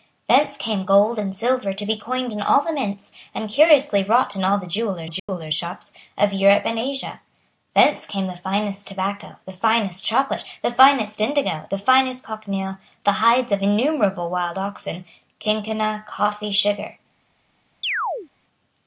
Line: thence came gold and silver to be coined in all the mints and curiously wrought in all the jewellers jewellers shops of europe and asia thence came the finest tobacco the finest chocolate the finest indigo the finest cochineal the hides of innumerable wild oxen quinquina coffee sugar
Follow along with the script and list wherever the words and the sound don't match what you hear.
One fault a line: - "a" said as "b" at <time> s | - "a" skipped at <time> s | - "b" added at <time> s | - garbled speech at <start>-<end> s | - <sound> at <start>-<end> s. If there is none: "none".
- dropout at 5.2-5.3 s
- chirp at 17.8-18.3 s